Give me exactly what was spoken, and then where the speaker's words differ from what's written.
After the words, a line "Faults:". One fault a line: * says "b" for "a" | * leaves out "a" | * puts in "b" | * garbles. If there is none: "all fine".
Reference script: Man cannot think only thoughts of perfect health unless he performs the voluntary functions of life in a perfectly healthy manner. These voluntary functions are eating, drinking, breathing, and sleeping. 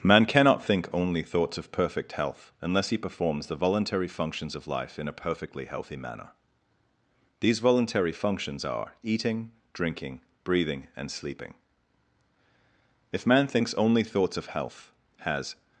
Man cannot think only thoughts of perfect health unless he performs the voluntary functions of life in a perfectly healthy manner. These voluntary functions are eating, drinking, breathing, and sleeping. If man thinks only thoughts of health, has
Faults:
* puts in "If man thinks only thoughts of health has"